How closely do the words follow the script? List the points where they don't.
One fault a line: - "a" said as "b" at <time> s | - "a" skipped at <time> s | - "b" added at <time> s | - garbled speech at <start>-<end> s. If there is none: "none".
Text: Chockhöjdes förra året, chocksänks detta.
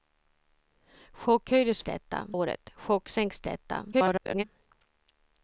- "förra" said as "detta" at 1.8 s
- garbled speech at 3.9-4.4 s